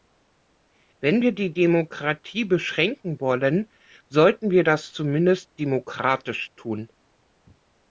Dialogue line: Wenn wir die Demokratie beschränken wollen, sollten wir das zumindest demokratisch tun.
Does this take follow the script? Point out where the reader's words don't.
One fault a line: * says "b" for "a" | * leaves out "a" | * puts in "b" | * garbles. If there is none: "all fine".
all fine